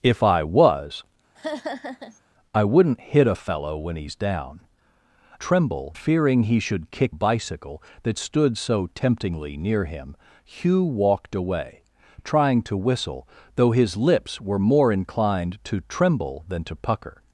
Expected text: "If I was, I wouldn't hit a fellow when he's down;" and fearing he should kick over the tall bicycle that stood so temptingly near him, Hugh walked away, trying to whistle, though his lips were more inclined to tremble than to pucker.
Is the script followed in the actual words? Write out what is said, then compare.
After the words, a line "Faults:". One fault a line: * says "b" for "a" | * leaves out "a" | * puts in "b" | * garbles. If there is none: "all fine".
"If I was, I wouldn't hit a fellow when he's down;" tremble fearing he should kick bicycle that stood so temptingly near him, Hugh walked away, trying to whistle, though his lips were more inclined to tremble than to pucker.
Faults:
* says "tremble" for "and"
* leaves out "over the tall"